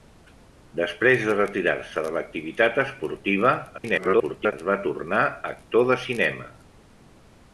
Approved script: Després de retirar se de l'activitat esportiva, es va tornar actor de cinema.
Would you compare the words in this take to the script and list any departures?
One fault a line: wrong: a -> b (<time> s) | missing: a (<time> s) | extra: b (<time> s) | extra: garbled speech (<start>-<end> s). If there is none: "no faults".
extra: garbled speech (3.8-4.5 s)